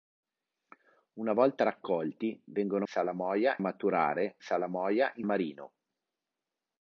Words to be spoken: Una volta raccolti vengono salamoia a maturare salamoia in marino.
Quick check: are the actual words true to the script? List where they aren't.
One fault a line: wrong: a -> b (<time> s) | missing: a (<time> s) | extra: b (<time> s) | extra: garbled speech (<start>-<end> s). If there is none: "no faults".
no faults